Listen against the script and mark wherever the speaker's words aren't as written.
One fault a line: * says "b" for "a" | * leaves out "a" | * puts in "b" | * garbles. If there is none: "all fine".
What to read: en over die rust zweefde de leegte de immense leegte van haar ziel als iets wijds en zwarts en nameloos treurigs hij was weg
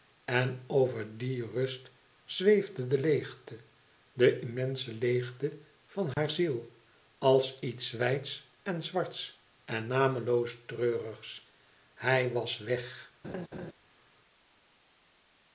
all fine